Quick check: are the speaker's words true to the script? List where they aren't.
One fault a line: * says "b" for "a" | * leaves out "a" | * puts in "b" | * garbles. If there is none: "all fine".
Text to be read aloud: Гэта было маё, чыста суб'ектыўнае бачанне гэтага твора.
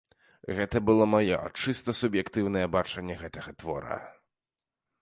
all fine